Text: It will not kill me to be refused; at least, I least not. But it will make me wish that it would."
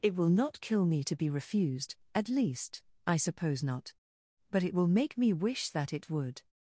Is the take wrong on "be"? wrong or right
right